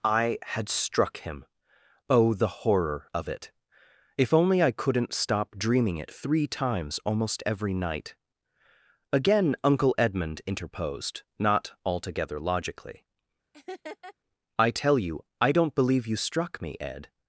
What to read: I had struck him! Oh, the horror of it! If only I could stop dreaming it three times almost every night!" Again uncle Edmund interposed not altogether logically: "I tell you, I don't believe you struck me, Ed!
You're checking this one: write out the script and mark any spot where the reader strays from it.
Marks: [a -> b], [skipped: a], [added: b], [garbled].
I had struck him! Oh, the horror of it! If only I [could -> couldn't] stop dreaming it three times almost every night!" Again uncle Edmund interposed not altogether logically: "I tell you, I don't believe you struck me, Ed!